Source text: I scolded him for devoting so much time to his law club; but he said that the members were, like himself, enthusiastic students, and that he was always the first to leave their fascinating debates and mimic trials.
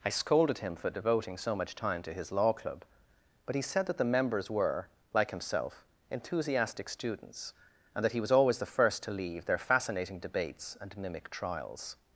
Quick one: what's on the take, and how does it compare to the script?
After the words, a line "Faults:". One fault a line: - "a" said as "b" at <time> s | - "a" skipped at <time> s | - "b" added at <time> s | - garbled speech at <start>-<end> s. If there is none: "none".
I scolded him for devoting so much time to his law club; but he said that the members were, like himself, enthusiastic students, and that he was always the first to leave their fascinating debates and mimic trials.
Faults:
none